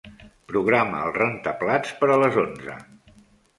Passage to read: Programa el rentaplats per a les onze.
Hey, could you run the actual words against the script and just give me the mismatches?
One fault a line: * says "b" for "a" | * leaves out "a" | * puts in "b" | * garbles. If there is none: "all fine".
all fine